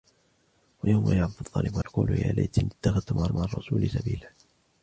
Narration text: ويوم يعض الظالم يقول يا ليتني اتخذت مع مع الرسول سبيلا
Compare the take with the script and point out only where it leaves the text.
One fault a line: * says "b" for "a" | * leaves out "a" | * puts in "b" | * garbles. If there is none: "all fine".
all fine